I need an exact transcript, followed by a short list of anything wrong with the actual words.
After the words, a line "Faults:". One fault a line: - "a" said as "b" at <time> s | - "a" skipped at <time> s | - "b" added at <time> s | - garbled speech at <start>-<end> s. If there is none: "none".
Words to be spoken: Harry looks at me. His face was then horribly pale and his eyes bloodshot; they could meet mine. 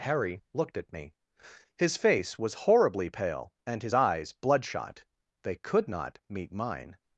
Harry looked at me. His face was horribly pale and his eyes bloodshot; they could not meet mine.
Faults:
- "looks" said as "looked" at 0.5 s
- "then" skipped at 2.5 s
- "not" added at 5.9 s